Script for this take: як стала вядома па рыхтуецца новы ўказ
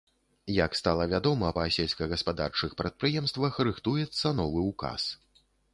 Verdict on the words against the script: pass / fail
fail